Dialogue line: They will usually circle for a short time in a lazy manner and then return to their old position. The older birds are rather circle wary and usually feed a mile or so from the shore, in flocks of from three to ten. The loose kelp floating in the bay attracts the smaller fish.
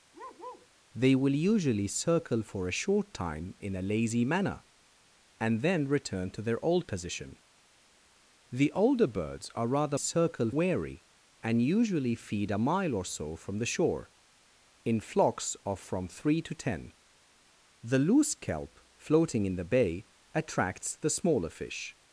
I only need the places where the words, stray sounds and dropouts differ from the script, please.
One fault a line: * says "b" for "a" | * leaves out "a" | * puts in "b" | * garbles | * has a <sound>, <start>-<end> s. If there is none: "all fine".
* has a bark, 0.1-0.7 s